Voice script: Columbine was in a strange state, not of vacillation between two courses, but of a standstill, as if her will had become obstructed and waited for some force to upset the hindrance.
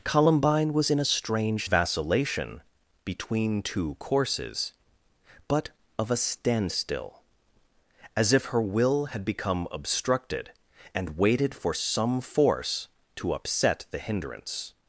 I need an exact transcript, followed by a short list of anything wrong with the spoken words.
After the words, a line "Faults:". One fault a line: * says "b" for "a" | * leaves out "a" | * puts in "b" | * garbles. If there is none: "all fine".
Columbine was in a strange vacillation between two courses, but of a standstill, as if her will had become obstructed and waited for some force to upset the hindrance.
Faults:
* leaves out "state not of"